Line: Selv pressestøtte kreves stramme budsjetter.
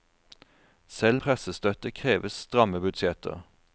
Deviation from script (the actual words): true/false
false